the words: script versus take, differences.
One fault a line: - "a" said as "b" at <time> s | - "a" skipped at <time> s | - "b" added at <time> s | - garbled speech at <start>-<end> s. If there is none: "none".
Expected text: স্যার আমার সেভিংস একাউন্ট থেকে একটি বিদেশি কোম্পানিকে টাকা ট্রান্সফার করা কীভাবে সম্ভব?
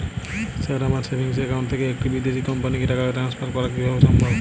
none